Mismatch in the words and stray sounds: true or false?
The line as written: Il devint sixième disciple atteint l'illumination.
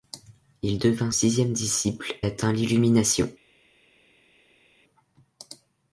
false